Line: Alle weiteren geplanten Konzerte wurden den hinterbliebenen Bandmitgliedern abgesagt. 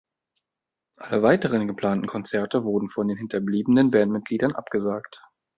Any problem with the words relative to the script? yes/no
yes